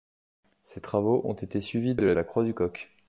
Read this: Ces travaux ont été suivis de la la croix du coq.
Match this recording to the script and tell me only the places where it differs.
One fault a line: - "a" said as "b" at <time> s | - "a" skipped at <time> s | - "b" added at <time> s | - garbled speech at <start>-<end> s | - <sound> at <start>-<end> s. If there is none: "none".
none